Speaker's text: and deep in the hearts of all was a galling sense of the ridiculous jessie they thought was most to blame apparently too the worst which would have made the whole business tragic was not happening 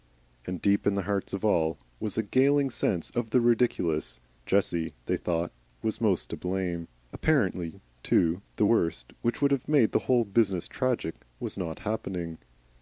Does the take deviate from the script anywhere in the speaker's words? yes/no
no